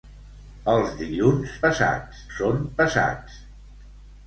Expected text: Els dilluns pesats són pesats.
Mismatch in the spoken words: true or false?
false